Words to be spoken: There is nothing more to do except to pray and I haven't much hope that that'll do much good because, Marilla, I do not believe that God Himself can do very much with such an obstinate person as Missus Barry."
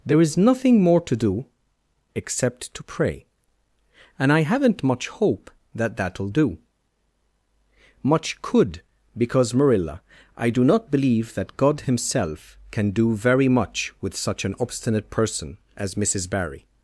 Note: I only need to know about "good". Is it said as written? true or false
false